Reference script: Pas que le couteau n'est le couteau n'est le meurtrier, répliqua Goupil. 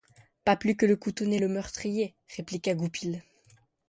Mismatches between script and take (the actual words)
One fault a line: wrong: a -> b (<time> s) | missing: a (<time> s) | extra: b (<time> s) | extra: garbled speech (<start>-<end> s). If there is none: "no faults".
extra: plus (0.6 s)
missing: couteau n'est le (1.5 s)